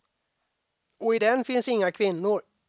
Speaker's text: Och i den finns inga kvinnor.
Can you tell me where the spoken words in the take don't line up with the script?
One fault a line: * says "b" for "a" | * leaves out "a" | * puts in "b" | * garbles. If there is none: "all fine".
all fine